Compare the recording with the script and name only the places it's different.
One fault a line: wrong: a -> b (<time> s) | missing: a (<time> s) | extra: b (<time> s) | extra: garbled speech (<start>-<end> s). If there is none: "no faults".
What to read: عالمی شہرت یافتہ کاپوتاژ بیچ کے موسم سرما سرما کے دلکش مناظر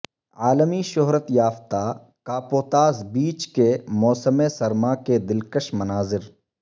missing: سرما (4.9 s)